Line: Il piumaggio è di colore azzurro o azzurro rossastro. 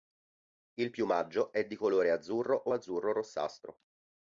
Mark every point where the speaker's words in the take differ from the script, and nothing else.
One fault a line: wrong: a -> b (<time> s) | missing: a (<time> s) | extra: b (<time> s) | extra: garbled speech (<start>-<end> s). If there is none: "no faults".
no faults